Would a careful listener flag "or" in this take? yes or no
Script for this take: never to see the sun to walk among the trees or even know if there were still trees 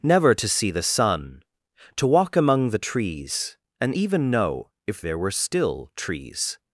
yes